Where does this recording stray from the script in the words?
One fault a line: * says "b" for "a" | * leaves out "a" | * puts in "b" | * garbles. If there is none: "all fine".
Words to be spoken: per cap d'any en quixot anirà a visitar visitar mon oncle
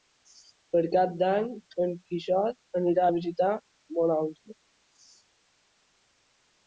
* leaves out "visitar"